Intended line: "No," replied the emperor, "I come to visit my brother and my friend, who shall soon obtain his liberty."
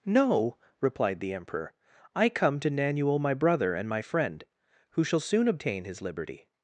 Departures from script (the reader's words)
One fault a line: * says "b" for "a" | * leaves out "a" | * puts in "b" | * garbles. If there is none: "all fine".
* says "nanuel" for "visit"